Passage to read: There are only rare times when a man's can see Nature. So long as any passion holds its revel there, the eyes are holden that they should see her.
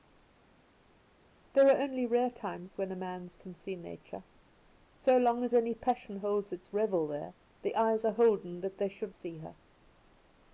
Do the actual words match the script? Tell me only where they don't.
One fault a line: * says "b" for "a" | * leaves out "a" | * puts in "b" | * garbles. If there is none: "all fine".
all fine